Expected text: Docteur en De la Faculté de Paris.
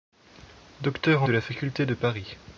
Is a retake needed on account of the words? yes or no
no